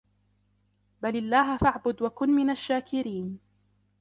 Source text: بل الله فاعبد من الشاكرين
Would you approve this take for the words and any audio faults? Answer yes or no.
no